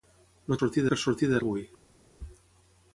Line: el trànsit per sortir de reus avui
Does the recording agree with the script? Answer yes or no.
no